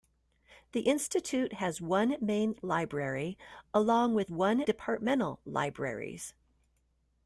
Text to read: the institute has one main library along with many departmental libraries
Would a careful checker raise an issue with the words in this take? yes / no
yes